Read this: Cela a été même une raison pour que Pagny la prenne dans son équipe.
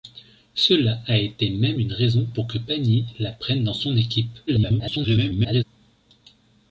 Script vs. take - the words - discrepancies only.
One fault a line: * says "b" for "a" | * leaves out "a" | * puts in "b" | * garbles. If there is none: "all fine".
* garbles